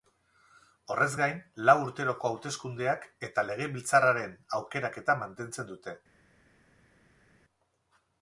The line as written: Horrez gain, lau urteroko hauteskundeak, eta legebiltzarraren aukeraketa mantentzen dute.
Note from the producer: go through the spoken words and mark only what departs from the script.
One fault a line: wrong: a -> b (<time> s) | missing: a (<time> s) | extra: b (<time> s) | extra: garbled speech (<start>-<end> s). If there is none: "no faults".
no faults